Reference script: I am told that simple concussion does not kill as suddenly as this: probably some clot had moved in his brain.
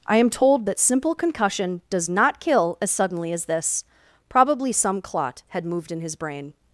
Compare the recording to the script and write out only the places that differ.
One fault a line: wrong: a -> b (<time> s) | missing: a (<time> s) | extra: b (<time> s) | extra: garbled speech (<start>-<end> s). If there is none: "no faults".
no faults